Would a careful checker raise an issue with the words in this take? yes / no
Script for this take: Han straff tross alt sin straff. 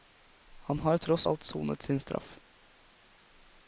yes